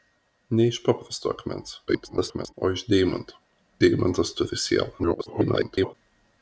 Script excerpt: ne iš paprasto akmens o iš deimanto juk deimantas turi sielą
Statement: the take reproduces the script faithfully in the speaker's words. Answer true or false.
false